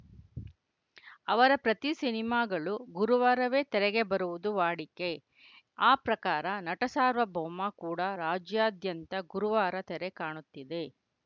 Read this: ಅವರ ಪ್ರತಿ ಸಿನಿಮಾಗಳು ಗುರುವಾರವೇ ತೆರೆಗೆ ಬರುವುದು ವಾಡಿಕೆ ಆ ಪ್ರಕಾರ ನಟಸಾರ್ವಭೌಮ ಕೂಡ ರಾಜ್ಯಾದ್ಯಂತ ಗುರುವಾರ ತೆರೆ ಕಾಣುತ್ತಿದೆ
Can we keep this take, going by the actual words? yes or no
yes